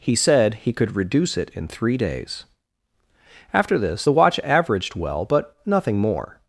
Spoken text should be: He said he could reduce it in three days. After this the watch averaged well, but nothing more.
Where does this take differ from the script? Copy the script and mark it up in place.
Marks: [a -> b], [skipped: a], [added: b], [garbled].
He said he could reduce it in three days. After this the watch averaged well, but nothing more.